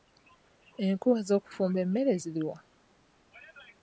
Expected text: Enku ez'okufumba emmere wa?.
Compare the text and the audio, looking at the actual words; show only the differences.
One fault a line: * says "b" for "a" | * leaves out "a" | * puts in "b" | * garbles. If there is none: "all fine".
* puts in "ziri"